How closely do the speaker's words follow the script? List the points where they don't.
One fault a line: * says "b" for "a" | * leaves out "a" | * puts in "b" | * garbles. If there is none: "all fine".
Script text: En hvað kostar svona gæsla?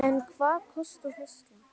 * leaves out "svona"